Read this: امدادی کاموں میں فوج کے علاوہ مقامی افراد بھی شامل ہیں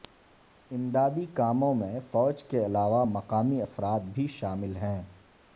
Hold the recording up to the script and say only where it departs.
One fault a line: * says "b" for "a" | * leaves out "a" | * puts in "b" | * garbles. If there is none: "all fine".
all fine